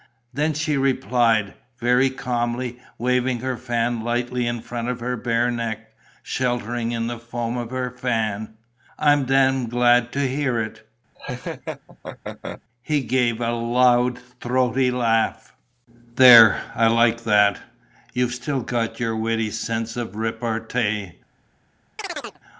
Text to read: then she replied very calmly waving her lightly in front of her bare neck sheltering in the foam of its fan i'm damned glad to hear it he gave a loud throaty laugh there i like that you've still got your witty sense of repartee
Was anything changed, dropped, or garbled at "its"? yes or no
yes